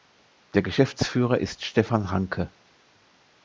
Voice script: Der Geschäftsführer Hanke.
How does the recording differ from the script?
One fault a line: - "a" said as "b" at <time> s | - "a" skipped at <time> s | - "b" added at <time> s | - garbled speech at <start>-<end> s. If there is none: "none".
- "ist Stefan" added at 1.4 s